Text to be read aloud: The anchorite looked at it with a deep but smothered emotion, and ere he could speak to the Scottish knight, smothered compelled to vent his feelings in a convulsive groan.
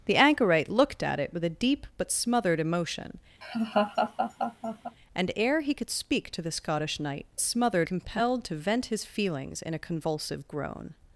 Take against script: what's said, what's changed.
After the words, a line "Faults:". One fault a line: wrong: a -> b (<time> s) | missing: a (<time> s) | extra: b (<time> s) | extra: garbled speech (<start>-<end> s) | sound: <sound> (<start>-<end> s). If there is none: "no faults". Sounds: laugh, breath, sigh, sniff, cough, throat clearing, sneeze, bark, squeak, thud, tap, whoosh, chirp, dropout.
The anchorite looked at it with a deep but smothered emotion, and ere he could speak to the Scottish knight, smothered compelled to vent his feelings in a convulsive groan.
Faults:
sound: laugh (3.4-5.0 s)